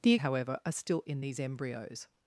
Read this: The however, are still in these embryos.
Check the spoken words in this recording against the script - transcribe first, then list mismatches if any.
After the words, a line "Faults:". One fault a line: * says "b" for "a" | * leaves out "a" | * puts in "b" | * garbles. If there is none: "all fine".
The however, are still in these embryos.
Faults:
all fine